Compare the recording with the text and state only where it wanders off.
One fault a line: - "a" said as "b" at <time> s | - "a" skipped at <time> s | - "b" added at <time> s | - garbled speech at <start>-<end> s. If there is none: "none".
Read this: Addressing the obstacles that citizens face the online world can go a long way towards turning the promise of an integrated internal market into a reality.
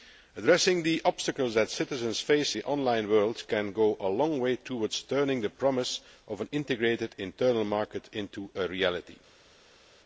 none